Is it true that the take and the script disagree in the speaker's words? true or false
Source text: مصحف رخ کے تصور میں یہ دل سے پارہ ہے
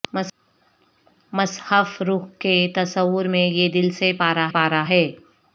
true